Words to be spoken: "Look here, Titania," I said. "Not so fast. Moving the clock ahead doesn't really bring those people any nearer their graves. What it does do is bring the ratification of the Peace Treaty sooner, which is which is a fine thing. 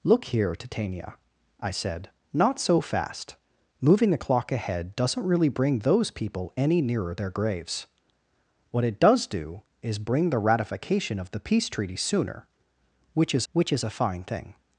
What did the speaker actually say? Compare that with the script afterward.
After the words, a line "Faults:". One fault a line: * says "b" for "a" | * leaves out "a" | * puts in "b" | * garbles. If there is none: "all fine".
"Look here, Titania," I said. "Not so fast. Moving the clock ahead doesn't really bring those people any nearer their graves. What it does do is bring the ratification of the Peace Treaty sooner, which is which is a fine thing.
Faults:
all fine